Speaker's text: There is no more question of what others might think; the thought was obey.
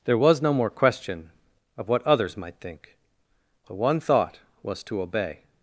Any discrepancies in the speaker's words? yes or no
yes